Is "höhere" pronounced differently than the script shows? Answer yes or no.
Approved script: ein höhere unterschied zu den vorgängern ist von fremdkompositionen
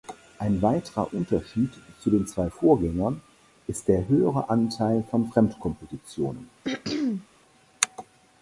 yes